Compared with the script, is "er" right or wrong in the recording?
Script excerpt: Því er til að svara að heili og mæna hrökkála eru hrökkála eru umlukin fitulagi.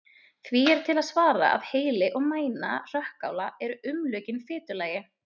right